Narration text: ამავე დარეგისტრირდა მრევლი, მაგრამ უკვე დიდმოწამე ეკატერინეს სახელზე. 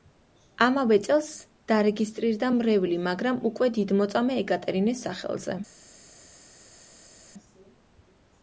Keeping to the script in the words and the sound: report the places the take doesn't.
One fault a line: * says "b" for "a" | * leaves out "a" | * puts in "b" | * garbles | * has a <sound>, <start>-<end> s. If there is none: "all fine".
* puts in "წელს"